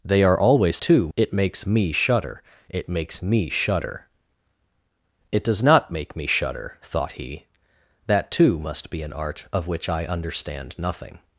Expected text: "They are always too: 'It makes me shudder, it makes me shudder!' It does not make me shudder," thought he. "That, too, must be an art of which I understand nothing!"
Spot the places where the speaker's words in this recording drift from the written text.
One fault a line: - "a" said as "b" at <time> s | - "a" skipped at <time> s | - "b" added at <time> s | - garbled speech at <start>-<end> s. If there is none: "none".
none